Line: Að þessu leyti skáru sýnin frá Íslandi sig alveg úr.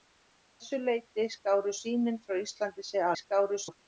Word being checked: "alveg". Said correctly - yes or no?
no